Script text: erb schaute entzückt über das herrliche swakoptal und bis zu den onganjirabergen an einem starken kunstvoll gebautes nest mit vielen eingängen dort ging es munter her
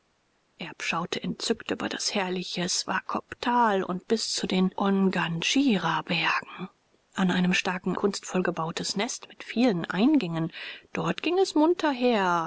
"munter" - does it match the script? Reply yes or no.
yes